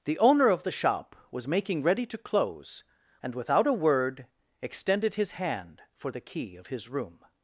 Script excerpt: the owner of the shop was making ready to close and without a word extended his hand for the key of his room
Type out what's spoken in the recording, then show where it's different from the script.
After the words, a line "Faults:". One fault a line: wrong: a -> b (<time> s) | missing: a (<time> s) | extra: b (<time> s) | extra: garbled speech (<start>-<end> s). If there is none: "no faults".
the owner of the shop was making ready to close and without a word extended his hand for the key of his room
Faults:
no faults